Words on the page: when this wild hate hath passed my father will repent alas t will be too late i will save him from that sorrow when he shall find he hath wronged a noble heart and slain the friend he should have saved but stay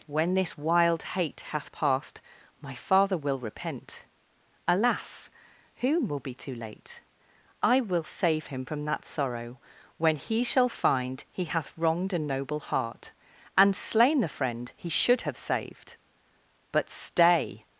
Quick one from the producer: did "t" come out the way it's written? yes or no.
no